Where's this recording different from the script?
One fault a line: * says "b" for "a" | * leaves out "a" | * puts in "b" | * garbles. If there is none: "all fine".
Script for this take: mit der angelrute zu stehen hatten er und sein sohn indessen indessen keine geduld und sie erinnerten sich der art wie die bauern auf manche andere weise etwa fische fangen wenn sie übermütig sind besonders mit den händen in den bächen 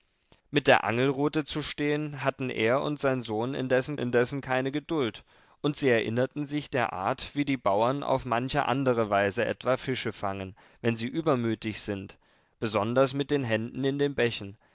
all fine